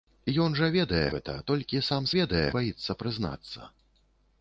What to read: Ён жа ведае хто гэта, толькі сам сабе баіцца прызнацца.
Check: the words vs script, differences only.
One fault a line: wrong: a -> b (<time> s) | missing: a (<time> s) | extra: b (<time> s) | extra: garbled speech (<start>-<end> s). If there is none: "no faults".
missing: хто (1.0 s)
wrong: сабе -> ведае (2.2 s)